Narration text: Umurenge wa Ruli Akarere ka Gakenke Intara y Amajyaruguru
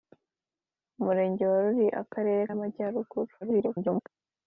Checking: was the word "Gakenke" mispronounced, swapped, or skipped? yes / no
yes